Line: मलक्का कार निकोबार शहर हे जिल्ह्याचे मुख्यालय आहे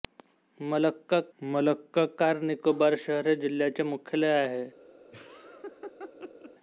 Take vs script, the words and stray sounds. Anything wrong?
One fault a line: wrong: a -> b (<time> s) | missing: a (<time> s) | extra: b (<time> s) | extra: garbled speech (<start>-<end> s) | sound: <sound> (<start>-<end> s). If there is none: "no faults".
extra: मलक्का (1.4 s)
sound: laugh (5.1-6.5 s)